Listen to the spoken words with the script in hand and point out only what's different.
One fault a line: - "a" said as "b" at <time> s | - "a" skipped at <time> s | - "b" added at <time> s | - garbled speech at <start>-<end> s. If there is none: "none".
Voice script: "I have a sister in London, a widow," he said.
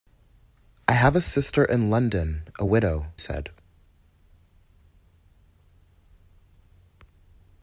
- "he" skipped at 3.1 s